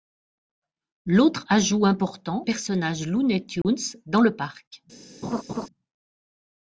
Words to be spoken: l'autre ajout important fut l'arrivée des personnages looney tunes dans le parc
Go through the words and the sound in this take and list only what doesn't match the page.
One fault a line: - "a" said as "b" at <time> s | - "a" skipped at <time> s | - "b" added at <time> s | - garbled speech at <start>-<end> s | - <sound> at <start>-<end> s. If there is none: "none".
- "fut l'arrivée des" skipped at 2.5 s
- dropout at 3.6-3.6 s
- laugh at 5.2-5.7 s